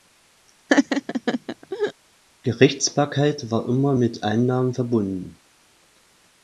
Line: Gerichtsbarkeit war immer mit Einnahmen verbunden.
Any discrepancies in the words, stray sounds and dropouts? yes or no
yes